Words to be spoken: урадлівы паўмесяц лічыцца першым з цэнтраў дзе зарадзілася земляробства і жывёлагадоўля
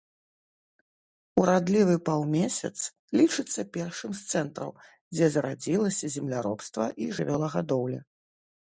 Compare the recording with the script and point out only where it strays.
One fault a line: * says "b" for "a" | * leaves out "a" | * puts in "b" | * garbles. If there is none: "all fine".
all fine